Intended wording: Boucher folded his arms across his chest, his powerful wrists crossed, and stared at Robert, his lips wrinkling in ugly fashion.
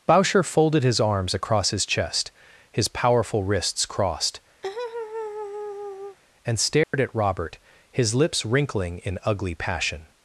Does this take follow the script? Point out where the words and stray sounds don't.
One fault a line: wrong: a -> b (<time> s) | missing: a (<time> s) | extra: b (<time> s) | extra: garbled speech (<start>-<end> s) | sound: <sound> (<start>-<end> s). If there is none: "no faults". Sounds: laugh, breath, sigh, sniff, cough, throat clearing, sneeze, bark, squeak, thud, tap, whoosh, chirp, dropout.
sound: laugh (4.6-6.2 s)
sound: dropout (6.8-6.9 s)
wrong: fashion -> passion (9.5 s)